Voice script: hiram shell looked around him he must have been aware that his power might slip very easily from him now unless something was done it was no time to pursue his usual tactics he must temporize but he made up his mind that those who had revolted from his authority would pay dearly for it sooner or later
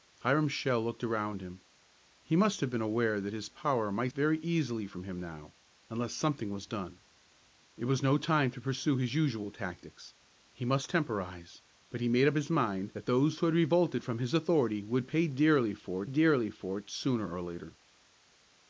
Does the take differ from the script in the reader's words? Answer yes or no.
yes